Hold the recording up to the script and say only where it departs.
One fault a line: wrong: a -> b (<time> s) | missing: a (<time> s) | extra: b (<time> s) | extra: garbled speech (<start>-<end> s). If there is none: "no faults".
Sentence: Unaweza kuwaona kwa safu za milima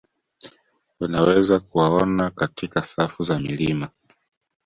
wrong: kwa -> katika (2.3 s)